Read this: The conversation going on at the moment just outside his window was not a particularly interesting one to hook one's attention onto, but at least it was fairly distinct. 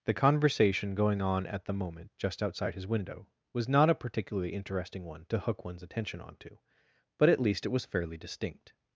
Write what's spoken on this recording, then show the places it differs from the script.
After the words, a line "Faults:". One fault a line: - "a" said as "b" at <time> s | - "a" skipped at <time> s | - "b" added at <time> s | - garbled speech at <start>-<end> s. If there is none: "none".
The conversation going on at the moment just outside his window was not a particularly interesting one to hook one's attention onto, but at least it was fairly distinct.
Faults:
none